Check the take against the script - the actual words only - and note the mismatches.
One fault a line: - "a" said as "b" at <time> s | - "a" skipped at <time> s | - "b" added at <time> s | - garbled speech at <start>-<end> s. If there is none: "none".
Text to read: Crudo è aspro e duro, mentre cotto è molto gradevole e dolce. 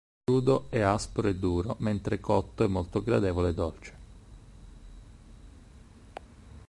none